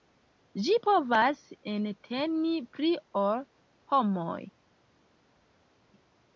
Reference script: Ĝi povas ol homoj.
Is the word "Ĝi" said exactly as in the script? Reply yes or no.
yes